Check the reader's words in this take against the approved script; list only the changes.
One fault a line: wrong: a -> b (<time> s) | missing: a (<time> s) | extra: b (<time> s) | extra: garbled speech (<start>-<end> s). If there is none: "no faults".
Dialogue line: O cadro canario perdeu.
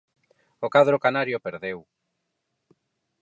no faults